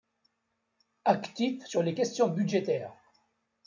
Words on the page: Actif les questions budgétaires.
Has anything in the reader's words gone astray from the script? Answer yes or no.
yes